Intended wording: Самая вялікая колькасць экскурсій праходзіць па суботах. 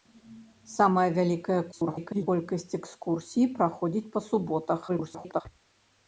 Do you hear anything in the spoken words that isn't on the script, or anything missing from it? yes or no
yes